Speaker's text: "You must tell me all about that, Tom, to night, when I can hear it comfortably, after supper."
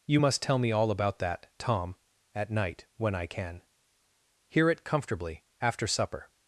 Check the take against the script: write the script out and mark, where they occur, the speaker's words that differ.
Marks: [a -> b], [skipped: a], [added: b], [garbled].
"You must tell me all about that, Tom, [to -> at] night, when I can hear it comfortably, after supper."